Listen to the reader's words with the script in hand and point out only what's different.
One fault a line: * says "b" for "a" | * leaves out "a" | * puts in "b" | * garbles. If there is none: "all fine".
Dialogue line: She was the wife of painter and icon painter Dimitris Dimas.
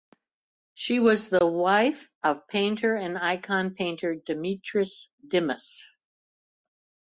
all fine